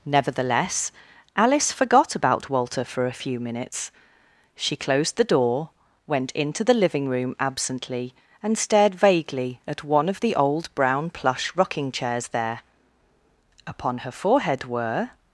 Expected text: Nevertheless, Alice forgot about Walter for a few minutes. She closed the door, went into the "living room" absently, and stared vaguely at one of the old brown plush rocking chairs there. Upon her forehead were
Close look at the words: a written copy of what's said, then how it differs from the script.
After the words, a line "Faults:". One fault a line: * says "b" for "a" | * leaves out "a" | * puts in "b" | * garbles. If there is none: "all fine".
Nevertheless, Alice forgot about Walter for a few minutes. She closed the door, went into the "living room" absently, and stared vaguely at one of the old brown plush rocking chairs there. Upon her forehead were
Faults:
all fine